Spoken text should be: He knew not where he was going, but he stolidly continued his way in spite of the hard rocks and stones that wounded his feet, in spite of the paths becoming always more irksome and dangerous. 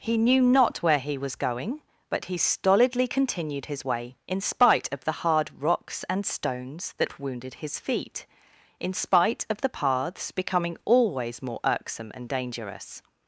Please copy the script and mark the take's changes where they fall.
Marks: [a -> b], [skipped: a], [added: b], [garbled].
He knew not where he was going, but he stolidly continued his way in spite of the hard rocks and stones that wounded his feet, in spite of the paths becoming always more irksome and dangerous.